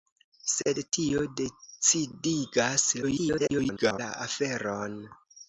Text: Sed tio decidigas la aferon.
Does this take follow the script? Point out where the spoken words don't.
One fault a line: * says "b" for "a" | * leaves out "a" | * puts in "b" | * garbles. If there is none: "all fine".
* garbles